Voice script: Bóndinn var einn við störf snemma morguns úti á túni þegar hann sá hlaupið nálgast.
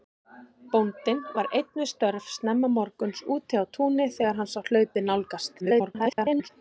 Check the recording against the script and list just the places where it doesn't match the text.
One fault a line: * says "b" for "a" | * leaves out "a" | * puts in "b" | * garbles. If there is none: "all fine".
* garbles